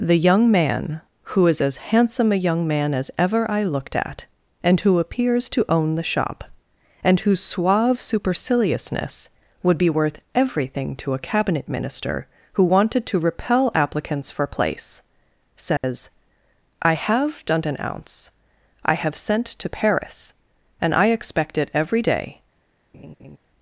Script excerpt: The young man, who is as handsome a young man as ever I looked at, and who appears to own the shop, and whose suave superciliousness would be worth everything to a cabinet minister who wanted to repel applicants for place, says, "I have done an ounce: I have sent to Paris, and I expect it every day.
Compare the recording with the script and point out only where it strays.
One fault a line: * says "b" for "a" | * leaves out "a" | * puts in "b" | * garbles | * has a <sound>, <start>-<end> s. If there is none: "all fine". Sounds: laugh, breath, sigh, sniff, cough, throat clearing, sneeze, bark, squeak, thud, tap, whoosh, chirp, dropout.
* has a dropout, 15.8-15.8 s
* has a laugh, 22.9-23.4 s